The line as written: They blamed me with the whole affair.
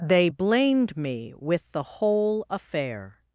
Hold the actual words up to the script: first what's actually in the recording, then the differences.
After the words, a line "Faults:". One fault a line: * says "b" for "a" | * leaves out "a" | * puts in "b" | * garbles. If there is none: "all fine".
They blamed me with the whole affair.
Faults:
all fine